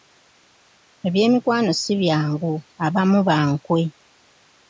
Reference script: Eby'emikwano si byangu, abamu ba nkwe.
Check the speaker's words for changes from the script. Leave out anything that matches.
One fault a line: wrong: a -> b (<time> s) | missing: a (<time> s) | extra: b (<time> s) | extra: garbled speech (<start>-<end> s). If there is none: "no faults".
no faults